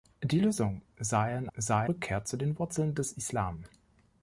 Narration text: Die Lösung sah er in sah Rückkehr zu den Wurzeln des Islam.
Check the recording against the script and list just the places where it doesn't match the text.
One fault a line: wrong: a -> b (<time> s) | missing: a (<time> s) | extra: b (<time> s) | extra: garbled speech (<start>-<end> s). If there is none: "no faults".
no faults